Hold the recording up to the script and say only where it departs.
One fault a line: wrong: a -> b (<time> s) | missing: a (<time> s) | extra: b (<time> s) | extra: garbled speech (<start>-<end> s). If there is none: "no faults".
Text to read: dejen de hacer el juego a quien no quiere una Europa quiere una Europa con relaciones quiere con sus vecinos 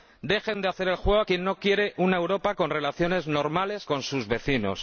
missing: quiere una Europa (2.5 s)
wrong: quiere -> normales (3.3 s)